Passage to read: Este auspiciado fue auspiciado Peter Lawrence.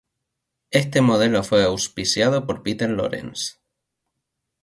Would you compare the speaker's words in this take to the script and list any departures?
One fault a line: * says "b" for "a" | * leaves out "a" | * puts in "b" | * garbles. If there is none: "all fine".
* says "modelo" for "auspiciado"
* puts in "por"